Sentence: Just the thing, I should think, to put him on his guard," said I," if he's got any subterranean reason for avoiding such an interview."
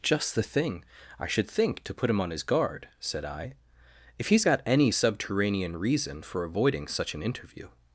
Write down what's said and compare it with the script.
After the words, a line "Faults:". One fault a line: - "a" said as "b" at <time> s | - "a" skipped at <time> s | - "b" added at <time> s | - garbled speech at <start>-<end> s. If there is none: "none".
Just the thing, I should think, to put him on his guard," said I," if he's got any subterranean reason for avoiding such an interview."
Faults:
none